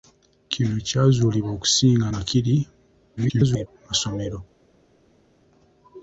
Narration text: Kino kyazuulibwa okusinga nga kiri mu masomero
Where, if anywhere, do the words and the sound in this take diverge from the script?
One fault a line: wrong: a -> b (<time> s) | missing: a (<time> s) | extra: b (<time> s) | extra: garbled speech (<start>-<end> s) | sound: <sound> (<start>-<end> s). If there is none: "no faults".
extra: garbled speech (3.2-3.7 s)